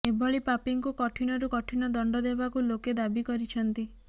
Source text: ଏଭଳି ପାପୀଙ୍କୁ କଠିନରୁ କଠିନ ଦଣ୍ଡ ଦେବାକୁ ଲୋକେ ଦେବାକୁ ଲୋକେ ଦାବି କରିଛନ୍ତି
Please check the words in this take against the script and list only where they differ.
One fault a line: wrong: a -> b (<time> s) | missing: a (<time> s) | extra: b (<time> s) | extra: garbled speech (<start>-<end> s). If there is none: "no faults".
missing: ଦେବାକୁ ଲୋକେ (3.0 s)